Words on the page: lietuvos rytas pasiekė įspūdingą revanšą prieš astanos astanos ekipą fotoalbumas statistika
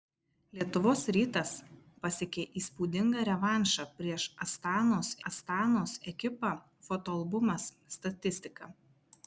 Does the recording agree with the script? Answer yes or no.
yes